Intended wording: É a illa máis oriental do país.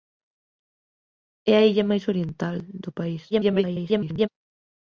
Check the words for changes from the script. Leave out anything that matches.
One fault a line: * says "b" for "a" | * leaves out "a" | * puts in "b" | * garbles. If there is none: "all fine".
* garbles